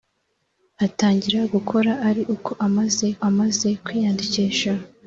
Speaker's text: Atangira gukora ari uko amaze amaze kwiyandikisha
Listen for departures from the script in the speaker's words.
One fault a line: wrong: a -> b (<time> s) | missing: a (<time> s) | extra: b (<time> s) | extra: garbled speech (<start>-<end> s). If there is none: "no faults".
no faults